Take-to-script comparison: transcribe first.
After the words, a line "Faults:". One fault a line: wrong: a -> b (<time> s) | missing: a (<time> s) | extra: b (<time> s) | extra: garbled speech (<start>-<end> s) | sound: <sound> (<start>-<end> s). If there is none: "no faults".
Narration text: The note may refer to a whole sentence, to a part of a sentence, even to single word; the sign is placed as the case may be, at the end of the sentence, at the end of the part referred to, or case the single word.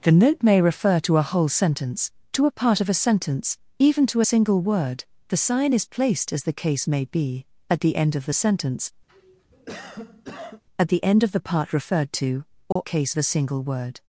The note may refer to a whole sentence, to a part of a sentence, even to single word; the sign is placed as the case may be, at the end of the sentence, at the end of the part referred to, or case the single word.
Faults:
sound: cough (9.1-10.6 s)
sound: dropout (12.7-12.8 s)